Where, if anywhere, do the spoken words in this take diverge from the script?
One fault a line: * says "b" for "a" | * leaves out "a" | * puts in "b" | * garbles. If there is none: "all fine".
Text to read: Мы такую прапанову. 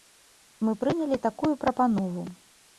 * puts in "прынялі"